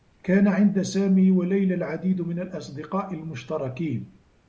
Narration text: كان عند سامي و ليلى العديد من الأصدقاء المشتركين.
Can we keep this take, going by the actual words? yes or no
yes